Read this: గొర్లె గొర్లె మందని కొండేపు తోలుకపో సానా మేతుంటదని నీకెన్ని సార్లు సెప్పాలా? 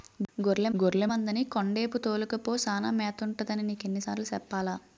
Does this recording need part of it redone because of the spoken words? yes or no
no